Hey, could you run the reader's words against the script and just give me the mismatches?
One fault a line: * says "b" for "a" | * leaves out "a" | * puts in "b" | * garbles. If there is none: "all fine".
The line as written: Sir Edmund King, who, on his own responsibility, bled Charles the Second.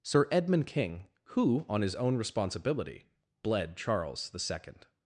all fine